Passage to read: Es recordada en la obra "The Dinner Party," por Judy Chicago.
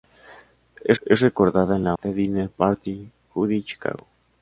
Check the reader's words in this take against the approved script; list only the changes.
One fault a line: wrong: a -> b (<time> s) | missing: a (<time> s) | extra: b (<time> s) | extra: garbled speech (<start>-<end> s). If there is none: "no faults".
extra: es (1.0 s)
missing: obra (2.0 s)
missing: por (3.1 s)